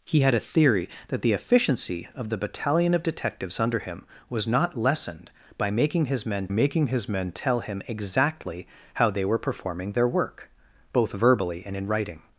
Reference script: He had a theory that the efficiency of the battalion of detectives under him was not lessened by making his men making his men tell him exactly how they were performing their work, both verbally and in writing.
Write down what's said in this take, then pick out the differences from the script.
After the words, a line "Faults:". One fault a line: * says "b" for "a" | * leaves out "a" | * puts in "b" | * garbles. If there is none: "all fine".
He had a theory that the efficiency of the battalion of detectives under him was not lessened by making his men making his men tell him exactly how they were performing their work, both verbally and in writing.
Faults:
all fine